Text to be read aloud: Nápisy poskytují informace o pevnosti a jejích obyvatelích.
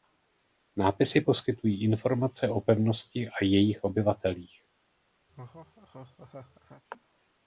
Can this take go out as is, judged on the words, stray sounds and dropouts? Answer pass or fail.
fail